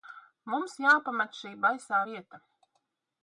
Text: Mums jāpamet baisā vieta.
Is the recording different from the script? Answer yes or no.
yes